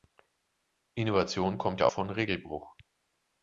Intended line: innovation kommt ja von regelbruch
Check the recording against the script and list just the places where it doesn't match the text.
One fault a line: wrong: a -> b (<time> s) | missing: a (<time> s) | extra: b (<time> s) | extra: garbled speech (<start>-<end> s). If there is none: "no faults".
no faults